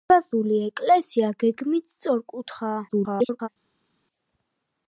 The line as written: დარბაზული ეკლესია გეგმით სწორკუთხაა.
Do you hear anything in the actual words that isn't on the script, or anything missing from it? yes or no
yes